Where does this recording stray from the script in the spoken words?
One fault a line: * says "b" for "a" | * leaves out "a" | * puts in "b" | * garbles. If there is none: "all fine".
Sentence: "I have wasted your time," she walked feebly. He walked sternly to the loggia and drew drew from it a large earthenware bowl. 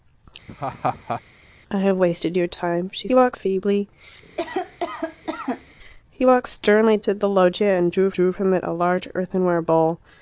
all fine